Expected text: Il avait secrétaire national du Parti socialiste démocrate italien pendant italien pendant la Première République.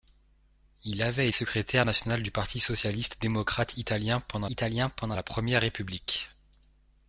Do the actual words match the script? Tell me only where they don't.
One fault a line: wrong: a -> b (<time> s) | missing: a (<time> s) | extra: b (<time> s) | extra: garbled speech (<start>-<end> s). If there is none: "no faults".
no faults